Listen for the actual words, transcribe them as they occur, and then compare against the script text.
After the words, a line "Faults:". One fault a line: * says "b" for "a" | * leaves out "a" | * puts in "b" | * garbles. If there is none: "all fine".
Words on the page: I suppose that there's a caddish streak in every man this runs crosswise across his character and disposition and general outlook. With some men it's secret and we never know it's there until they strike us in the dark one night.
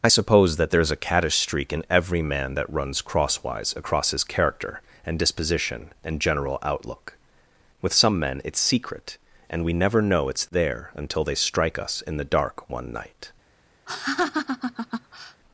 I suppose that there's a caddish streak in every man that runs crosswise across his character and disposition and general outlook. With some men it's secret and we never know it's there until they strike us in the dark one night.
Faults:
* says "that" for "this"